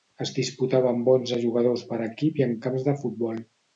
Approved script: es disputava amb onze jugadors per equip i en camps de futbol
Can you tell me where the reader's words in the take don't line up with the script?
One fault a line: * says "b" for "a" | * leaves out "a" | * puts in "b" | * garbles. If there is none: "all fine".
all fine